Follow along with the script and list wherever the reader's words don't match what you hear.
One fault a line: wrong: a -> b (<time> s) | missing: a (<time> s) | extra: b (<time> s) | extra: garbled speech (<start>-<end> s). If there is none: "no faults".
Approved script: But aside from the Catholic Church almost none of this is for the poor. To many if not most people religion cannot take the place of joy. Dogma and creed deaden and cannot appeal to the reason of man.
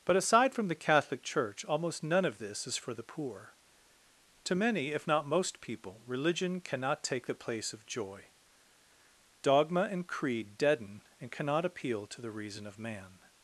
no faults